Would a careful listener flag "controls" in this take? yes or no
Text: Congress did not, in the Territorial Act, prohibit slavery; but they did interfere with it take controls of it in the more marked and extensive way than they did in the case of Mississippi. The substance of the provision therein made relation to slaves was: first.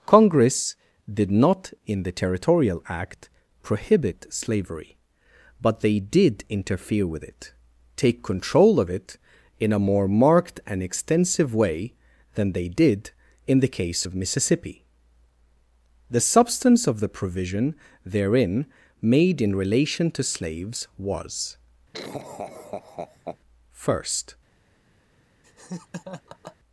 yes